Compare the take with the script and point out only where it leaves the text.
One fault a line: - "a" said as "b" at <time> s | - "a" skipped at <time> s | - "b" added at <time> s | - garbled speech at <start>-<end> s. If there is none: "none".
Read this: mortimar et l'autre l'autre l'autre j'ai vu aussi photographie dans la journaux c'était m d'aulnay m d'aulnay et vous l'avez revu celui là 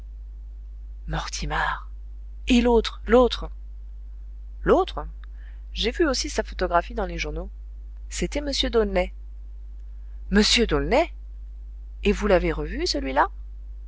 - "sa" added at 6.3 s
- "la" said as "les" at 7.0 s